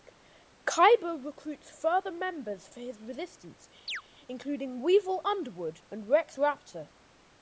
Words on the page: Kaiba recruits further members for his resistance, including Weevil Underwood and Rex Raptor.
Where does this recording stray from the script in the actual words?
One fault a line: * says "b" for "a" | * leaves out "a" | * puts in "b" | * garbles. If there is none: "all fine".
all fine